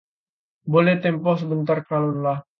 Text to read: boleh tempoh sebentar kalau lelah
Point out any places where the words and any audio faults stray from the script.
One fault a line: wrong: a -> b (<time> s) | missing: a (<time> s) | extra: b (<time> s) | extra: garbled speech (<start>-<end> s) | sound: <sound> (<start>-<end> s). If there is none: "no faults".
no faults